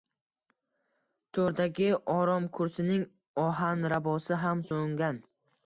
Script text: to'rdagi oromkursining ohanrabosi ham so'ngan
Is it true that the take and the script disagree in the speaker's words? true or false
false